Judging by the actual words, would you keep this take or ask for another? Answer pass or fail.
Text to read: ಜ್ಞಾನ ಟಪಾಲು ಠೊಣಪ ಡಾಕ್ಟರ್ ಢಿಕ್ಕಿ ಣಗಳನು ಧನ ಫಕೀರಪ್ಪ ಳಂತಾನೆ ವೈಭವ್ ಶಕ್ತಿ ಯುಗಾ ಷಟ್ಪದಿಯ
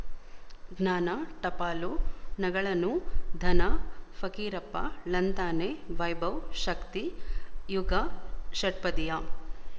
fail